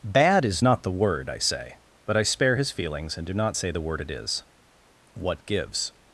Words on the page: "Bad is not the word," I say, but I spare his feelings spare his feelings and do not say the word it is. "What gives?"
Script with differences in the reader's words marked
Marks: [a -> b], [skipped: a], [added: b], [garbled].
"Bad is not the word," I say, but I spare his feelings [skipped: spare his feelings] and do not say the word it is. "What gives?"